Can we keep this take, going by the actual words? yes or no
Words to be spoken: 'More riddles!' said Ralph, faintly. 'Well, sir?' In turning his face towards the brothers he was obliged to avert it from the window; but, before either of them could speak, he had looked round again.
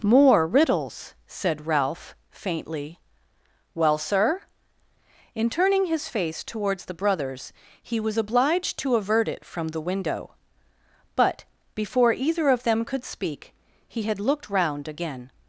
yes